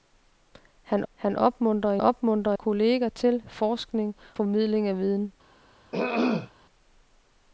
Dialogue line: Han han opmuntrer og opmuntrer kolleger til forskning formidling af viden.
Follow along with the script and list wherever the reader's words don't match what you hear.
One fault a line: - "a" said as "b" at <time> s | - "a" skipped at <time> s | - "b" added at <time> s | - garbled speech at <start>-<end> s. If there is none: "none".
none